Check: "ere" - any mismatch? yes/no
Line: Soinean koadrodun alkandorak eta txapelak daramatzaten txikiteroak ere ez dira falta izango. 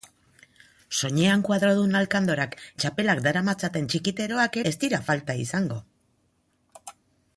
yes